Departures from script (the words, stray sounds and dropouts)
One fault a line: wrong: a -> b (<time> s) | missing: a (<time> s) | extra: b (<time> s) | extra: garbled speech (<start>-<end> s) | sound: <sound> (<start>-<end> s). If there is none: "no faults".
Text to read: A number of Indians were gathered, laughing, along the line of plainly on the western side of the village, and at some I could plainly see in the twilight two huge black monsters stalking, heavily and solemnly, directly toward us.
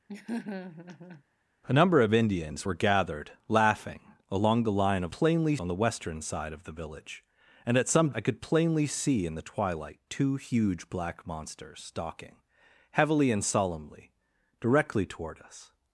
sound: laugh (0.1-1.2 s)